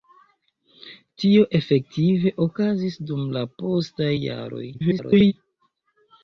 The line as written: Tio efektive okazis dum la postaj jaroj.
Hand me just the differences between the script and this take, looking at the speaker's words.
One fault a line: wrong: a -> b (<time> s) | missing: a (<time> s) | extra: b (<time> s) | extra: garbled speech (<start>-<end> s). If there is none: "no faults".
extra: garbled speech (4.7-5.3 s)